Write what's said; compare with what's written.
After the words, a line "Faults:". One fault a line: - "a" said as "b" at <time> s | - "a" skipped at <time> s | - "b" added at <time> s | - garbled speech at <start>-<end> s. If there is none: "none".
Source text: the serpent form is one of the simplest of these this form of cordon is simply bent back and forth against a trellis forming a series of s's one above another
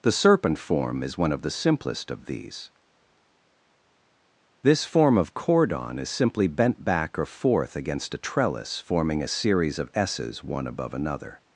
the serpent form is one of the simplest of these this form of cordon is simply bent back or forth against a trellis forming a series of s's one above another
Faults:
- "and" said as "or" at 7.2 s